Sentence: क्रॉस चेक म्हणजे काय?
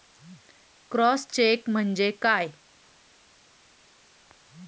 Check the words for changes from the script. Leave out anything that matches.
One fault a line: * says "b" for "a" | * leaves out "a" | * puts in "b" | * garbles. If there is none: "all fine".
all fine